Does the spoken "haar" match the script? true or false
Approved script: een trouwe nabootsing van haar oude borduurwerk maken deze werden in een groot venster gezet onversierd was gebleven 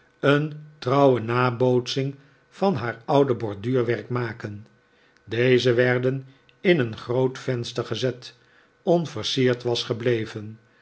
true